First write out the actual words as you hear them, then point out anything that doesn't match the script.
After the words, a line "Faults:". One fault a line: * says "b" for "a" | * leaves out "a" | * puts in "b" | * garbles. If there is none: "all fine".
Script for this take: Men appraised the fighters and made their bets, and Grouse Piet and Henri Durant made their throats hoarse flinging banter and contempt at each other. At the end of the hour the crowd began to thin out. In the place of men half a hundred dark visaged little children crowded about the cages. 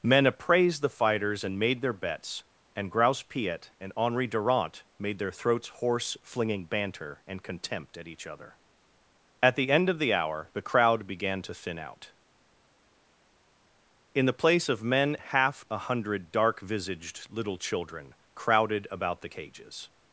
Men appraised the fighters and made their bets, and Grouse Piet and Henri Durant made their throats hoarse flinging banter and contempt at each other. At the end of the hour the crowd began to thin out. In the place of men half a hundred dark visaged little children crowded about the cages.
Faults:
all fine